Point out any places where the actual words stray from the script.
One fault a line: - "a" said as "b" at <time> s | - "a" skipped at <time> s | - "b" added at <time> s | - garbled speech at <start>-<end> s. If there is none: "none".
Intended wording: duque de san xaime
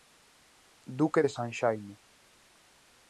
none